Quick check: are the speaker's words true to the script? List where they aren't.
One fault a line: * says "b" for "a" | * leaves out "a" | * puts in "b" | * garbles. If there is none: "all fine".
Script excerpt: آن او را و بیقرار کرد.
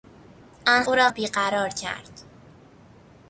all fine